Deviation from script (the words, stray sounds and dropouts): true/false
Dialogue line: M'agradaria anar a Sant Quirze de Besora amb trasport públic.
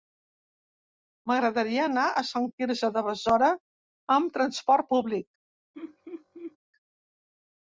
true